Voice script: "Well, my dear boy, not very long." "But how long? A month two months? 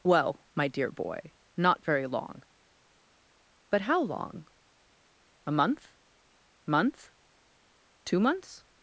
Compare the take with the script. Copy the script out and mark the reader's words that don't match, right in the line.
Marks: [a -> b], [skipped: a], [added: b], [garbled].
"Well, my dear boy, not very long." "But how long? A month [added: month] two months?